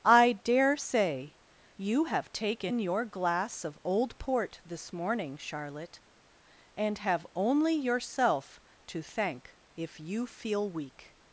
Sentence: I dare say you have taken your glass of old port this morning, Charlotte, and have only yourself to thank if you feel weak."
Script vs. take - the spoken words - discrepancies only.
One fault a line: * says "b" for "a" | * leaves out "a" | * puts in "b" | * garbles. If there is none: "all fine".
all fine